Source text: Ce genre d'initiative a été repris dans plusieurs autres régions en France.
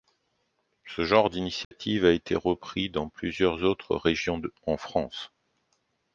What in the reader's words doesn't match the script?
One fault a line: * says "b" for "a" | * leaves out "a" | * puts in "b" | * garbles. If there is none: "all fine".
all fine